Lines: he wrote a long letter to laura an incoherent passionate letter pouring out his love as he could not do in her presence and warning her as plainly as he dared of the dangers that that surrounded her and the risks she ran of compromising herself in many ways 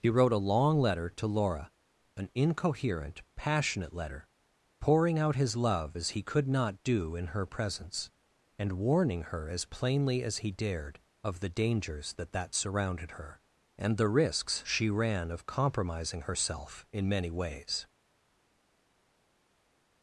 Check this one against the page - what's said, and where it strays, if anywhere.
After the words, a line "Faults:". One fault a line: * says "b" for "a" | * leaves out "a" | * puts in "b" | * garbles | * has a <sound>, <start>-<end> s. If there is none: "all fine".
he wrote a long letter to laura an incoherent passionate letter pouring out his love as he could not do in her presence and warning her as plainly as he dared of the dangers that that surrounded her and the risks she ran of compromising herself in many ways
Faults:
all fine